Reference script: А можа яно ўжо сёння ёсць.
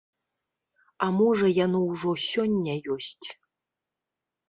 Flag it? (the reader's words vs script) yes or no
no